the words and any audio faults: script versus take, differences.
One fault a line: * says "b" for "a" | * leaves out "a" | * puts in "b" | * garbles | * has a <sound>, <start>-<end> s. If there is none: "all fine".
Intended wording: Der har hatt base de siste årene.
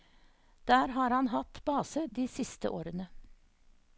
* puts in "han"